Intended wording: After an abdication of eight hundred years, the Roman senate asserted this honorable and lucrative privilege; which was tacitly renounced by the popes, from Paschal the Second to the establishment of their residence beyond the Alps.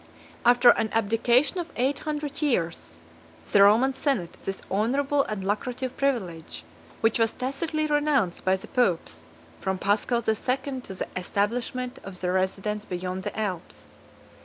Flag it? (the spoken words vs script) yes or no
yes